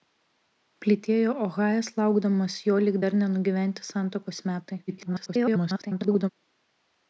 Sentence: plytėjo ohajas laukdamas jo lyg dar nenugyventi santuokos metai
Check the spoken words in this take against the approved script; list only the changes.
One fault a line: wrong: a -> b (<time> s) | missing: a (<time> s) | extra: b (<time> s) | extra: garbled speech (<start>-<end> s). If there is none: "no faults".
extra: garbled speech (4.9-6.3 s)